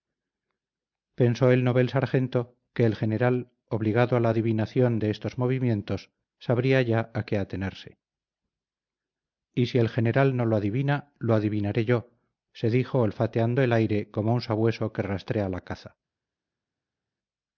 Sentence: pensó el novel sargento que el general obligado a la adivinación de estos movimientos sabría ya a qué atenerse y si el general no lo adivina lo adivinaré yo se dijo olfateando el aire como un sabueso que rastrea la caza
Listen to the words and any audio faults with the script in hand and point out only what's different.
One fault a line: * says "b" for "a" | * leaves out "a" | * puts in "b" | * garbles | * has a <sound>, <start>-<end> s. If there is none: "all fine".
all fine